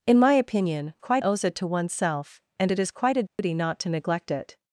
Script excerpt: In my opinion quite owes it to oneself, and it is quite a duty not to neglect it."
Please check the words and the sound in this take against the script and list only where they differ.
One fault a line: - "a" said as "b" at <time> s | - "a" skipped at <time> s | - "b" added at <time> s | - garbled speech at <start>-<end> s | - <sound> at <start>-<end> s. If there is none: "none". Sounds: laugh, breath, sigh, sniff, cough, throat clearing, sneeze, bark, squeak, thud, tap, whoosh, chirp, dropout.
- dropout at 3.3-3.4 s